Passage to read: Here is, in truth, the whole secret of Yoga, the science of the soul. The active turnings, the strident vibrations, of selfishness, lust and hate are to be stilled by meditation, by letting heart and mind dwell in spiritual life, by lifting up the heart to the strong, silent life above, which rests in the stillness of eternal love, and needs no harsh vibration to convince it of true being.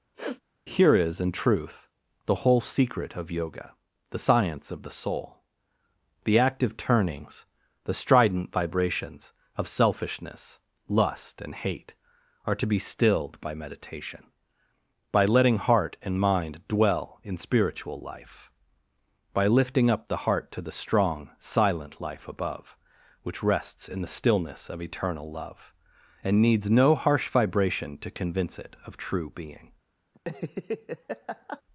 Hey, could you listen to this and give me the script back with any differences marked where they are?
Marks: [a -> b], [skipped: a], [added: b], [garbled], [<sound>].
[sniff] Here is, in truth, the whole secret of Yoga, the science of the soul. The active turnings, the strident vibrations, of selfishness, lust and hate are to be stilled by meditation, by letting heart and mind dwell in spiritual life, by lifting up the heart to the strong, silent life above, which rests in the stillness of eternal love, and needs no harsh vibration to convince it of true being. [laugh]